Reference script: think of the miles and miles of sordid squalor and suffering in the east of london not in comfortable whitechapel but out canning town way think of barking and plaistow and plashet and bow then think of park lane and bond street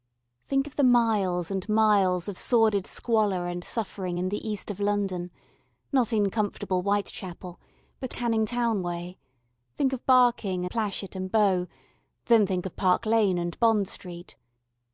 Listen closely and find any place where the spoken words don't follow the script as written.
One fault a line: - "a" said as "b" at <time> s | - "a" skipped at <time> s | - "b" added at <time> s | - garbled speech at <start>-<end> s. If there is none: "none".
- "out" skipped at 8.1 s
- "and plaistow and" skipped at 10.7 s